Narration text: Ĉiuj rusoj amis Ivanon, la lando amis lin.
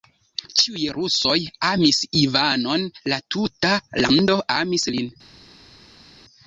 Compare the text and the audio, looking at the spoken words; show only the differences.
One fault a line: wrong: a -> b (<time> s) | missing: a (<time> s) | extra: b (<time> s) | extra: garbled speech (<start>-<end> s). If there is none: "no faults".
extra: tuta (3.4 s)